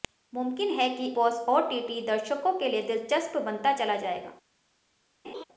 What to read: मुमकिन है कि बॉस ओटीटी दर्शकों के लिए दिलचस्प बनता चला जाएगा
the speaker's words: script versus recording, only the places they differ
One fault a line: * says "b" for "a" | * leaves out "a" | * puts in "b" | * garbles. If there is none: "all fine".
all fine